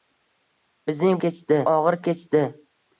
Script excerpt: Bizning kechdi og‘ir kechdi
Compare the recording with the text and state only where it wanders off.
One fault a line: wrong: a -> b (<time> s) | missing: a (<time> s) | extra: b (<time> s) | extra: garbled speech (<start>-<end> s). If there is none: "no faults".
no faults